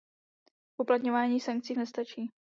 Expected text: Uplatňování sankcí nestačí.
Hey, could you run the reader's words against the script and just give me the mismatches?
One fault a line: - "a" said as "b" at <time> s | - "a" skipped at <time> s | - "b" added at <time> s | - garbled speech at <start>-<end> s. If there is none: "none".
none